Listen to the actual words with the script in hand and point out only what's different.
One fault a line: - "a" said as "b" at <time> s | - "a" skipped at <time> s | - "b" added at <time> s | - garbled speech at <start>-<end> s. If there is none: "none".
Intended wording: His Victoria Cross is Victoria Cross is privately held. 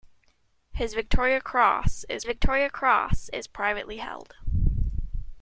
none